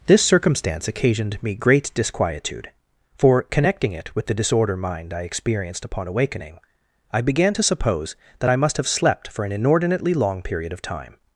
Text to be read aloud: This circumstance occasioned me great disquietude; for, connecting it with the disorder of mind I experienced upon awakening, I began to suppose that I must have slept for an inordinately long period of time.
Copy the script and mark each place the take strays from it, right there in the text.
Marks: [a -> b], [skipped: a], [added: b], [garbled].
This circumstance occasioned me great disquietude; for, connecting it with the disorder [skipped: of] mind I experienced upon awakening, I began to suppose that I must have slept for an inordinately long period of time.